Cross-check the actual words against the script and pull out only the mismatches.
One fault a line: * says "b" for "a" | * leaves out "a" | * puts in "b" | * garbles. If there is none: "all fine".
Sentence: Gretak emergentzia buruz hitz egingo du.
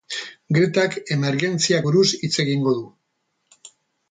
all fine